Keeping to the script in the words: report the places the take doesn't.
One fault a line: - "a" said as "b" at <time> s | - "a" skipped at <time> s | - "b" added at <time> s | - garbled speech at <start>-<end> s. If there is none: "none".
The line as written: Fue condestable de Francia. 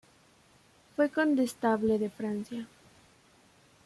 none